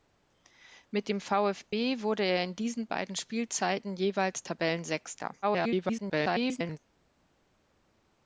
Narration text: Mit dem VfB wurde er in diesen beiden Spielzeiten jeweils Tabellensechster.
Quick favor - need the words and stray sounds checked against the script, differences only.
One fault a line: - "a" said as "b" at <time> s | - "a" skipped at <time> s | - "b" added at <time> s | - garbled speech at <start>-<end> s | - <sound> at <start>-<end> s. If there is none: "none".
- dropout at 1.7-1.7 s
- garbled speech at 5.4-6.8 s